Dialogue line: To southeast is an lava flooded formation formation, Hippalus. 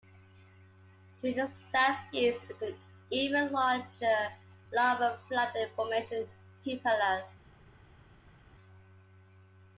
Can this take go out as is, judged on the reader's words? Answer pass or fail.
fail